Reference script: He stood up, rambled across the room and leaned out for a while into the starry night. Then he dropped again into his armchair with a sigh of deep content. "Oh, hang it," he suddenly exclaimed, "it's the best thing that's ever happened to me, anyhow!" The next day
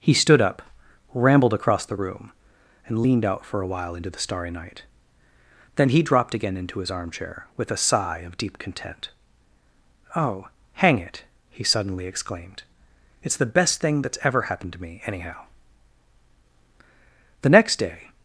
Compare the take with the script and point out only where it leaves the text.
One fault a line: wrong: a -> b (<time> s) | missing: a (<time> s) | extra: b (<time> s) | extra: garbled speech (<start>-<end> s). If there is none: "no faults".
no faults